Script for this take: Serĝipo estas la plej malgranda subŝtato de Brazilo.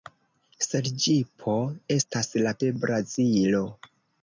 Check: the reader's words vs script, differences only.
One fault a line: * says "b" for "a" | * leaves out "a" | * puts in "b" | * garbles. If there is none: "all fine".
* leaves out "plej malgranda subŝtato"